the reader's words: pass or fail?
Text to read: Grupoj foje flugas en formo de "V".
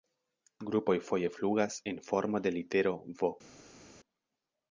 fail